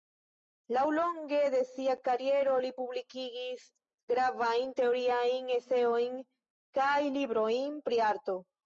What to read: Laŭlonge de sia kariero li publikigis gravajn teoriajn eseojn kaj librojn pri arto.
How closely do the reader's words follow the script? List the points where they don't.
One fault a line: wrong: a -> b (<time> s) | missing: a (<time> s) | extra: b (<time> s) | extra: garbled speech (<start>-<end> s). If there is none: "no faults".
no faults